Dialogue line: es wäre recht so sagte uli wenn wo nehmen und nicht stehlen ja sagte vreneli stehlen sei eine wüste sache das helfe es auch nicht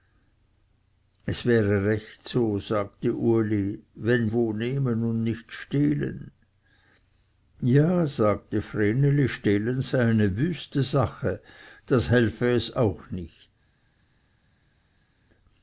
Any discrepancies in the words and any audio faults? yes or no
no